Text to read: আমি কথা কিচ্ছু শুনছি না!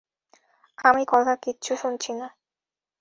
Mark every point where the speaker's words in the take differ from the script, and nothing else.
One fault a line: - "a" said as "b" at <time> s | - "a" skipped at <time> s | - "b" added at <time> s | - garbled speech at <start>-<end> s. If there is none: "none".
none